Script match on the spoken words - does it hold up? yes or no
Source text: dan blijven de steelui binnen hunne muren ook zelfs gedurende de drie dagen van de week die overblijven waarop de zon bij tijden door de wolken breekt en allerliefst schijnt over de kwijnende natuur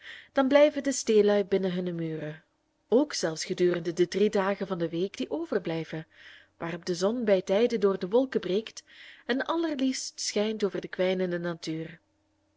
yes